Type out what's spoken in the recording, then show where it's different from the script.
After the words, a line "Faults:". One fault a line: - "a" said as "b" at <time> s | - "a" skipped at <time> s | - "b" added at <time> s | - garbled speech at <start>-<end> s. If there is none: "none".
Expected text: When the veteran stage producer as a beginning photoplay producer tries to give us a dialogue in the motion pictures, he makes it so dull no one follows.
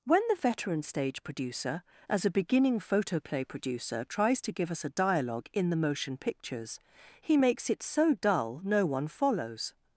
When the veteran stage producer as a beginning photoplay producer tries to give us a dialogue in the motion pictures, he makes it so dull no one follows.
Faults:
none